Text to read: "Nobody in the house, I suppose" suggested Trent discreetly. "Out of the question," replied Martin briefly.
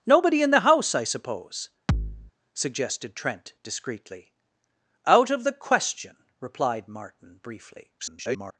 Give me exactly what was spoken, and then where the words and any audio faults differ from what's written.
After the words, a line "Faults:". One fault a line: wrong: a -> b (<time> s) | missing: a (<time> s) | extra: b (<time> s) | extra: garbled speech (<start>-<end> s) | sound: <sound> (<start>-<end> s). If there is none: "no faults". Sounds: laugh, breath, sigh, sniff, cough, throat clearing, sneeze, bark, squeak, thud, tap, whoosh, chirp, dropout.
"Nobody in the house, I suppose" suggested Trent discreetly. "Out of the question," replied Martin briefly. [garbled]
Faults:
sound: thud (1.9-2.3 s)
extra: garbled speech (8.0-8.6 s)